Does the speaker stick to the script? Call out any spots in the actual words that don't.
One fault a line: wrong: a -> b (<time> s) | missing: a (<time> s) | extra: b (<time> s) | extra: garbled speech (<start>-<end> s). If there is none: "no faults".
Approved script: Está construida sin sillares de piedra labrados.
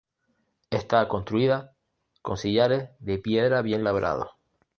wrong: sin -> con (2.2 s)
extra: bien (3.6 s)